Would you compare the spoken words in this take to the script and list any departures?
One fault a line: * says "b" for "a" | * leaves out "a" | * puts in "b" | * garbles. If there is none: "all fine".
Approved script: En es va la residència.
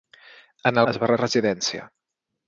all fine